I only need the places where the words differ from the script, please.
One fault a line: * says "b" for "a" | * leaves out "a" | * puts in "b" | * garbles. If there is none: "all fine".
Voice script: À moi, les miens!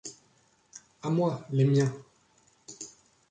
all fine